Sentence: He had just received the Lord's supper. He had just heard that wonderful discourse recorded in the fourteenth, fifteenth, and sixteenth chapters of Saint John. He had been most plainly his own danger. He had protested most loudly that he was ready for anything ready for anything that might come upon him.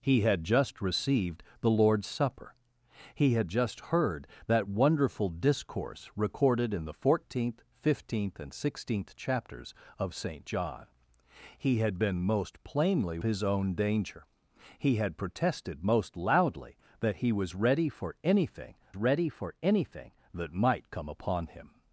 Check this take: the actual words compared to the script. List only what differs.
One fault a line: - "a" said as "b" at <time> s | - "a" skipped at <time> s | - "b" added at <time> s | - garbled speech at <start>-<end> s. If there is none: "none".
none